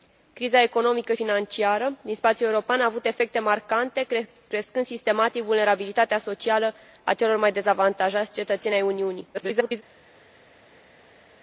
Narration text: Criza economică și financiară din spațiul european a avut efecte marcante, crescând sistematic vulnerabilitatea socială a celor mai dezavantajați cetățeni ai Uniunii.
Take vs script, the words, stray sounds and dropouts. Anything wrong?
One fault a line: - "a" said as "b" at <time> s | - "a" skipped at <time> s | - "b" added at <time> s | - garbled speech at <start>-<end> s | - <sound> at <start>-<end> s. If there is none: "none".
- "și" skipped at 1.1 s
- garbled speech at 9.3-9.8 s